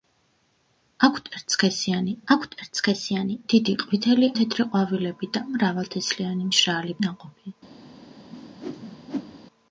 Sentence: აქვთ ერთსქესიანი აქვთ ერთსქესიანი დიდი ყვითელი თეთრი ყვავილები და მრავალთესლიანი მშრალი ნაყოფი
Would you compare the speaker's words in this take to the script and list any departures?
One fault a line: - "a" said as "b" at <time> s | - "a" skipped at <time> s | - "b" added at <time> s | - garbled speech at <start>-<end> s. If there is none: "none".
none